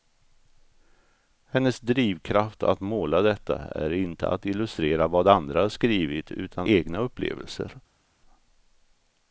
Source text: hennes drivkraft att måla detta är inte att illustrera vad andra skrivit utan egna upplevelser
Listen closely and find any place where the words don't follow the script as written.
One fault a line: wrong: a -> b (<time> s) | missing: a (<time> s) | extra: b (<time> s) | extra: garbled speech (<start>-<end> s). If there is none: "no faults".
no faults